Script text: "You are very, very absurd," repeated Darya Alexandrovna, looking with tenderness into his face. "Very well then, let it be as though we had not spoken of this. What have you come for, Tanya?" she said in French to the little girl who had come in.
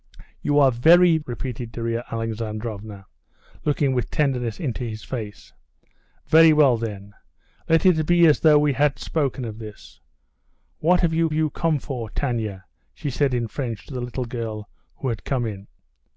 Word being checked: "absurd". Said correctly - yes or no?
no